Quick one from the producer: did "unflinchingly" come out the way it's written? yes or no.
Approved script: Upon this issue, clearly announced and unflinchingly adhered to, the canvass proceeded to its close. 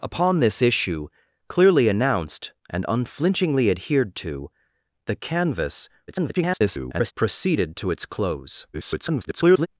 yes